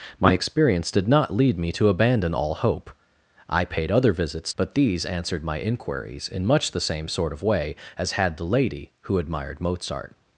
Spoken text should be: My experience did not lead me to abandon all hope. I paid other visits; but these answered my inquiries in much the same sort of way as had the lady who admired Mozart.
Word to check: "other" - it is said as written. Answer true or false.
true